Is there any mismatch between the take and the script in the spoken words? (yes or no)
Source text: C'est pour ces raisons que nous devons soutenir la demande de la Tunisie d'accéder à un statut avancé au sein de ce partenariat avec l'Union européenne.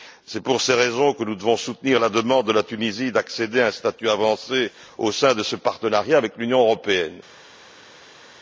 no